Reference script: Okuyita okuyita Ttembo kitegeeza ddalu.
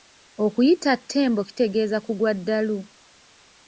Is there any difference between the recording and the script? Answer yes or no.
yes